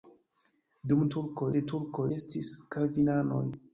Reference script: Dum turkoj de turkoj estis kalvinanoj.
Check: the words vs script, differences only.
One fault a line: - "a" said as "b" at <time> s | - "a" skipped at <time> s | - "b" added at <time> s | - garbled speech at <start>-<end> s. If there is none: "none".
none